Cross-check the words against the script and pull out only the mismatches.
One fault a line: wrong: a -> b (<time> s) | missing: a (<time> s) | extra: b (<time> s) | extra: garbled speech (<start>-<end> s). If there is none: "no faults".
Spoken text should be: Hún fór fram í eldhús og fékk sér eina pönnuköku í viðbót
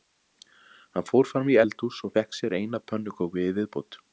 wrong: Hún -> Hann (0.9 s)